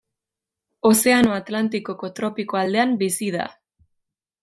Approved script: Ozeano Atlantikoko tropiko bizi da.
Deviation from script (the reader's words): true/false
true